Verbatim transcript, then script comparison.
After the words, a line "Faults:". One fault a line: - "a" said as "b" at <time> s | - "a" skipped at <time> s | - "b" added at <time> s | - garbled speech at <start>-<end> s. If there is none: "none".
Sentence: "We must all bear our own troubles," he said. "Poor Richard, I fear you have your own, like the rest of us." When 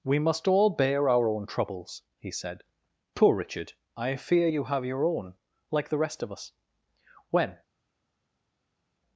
"We must all bear our own troubles," he said. "Poor Richard, I fear you have your own, like the rest of us." When
Faults:
none